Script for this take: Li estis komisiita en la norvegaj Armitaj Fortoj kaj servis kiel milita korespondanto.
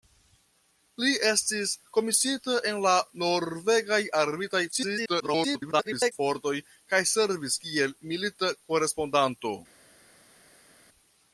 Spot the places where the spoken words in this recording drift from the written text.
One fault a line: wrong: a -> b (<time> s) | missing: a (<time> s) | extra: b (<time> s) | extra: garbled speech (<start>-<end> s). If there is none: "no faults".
extra: garbled speech (4.7-6.1 s)